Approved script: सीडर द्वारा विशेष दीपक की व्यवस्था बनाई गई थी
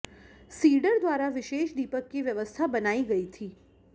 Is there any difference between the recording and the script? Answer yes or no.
no